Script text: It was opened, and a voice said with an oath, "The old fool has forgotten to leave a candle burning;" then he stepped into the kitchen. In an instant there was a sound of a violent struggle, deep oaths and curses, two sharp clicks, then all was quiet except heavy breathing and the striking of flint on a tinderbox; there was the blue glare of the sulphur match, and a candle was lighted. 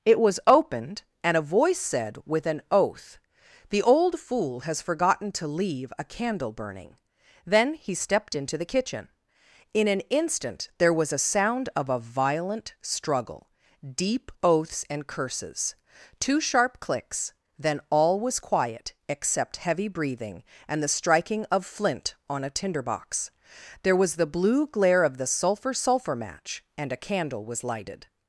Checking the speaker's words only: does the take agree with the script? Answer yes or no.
no